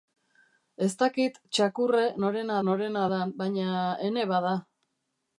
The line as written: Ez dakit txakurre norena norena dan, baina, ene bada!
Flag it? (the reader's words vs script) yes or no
no